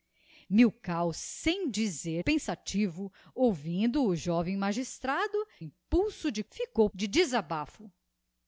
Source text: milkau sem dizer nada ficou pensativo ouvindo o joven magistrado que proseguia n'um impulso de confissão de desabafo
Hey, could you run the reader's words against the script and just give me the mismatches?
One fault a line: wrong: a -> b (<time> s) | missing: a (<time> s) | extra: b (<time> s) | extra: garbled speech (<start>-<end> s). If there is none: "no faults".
missing: nada ficou (2.2 s)
missing: que proseguia n'um (5.5 s)
wrong: confissão -> ficou (6.5 s)